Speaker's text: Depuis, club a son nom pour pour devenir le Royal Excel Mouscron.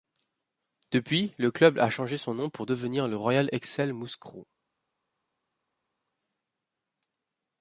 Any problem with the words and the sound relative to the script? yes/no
yes